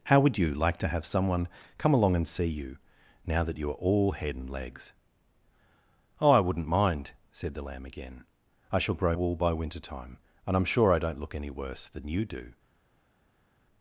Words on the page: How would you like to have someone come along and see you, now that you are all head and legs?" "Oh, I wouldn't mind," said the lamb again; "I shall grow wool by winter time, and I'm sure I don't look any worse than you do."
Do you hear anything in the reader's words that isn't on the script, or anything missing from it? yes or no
no